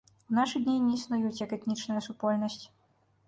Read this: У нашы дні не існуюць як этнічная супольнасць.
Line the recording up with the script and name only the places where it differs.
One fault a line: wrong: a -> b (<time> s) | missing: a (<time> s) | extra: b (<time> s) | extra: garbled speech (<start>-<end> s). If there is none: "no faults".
no faults